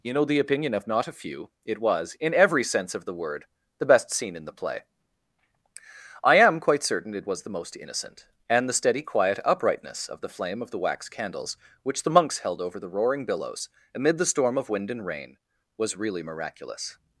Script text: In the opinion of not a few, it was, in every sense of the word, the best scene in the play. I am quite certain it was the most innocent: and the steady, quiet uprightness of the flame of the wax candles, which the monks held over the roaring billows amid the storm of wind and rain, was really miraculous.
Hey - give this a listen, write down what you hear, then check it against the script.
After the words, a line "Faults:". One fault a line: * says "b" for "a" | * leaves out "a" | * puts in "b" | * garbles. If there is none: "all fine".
You know the opinion of not a few, it was, in every sense of the word, the best scene in the play. I am quite certain it was the most innocent: and the steady, quiet uprightness of the flame of the wax candles, which the monks held over the roaring billows amid the storm of wind and rain, was really miraculous.
Faults:
* says "You know" for "In"